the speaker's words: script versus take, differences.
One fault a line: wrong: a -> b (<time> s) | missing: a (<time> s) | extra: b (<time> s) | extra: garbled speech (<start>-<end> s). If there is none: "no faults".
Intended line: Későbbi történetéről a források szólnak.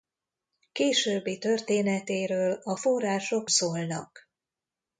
no faults